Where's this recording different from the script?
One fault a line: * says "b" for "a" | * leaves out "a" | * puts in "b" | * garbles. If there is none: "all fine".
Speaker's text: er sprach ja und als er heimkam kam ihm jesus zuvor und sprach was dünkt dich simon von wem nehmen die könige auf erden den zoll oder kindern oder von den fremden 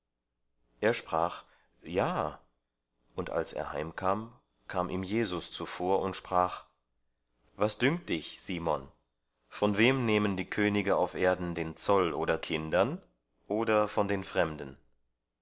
all fine